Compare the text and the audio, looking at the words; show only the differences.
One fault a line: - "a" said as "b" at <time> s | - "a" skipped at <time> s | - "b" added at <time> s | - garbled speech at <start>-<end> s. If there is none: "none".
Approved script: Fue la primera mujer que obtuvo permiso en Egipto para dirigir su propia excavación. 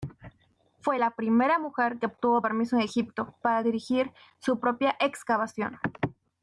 none